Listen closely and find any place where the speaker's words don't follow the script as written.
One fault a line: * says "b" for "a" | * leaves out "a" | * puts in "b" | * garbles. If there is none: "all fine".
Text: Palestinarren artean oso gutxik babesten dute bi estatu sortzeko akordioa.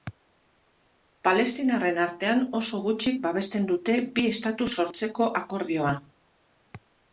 all fine